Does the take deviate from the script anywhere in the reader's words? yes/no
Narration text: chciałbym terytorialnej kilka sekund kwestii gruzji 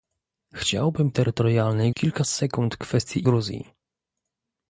no